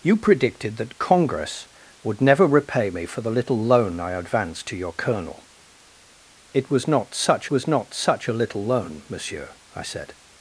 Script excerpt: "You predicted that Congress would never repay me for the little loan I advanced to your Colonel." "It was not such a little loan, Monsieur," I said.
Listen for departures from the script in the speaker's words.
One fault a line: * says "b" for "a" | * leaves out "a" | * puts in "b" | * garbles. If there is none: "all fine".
* puts in "was not such"